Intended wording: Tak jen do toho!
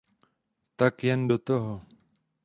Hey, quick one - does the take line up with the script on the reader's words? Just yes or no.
yes